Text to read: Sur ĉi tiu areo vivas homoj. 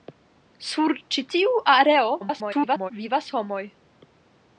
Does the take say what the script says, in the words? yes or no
no